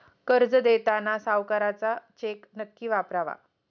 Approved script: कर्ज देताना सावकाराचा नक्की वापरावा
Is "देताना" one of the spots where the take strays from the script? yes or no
no